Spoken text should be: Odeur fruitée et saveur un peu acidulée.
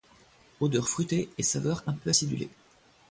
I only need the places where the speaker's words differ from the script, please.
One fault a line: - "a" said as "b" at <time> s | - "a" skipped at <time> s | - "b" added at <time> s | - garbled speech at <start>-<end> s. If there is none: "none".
none